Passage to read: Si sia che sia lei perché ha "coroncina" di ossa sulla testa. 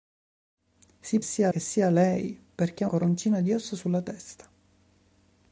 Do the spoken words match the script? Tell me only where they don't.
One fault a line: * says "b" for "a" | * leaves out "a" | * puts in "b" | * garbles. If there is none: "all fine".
all fine